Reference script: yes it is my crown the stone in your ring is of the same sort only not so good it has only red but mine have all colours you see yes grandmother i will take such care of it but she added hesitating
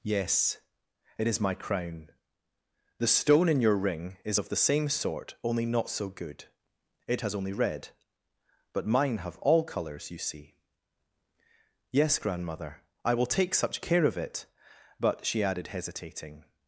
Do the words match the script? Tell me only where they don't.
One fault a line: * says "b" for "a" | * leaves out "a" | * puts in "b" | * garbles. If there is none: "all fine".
all fine